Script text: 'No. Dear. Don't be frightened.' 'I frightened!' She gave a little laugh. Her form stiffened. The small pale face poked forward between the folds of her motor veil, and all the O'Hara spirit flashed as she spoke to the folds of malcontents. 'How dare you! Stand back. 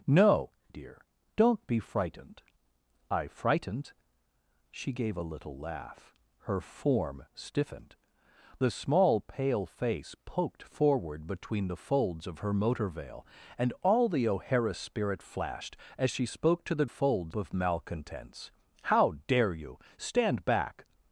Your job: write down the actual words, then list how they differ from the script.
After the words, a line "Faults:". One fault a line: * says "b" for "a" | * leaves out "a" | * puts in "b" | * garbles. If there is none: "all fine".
'No. Dear. Don't be frightened.' 'I frightened!' She gave a little laugh. Her form stiffened. The small pale face poked forward between the folds of her motor veil, and all the O'Hara spirit flashed as she spoke to the folds of malcontents. 'How dare you! Stand back.
Faults:
all fine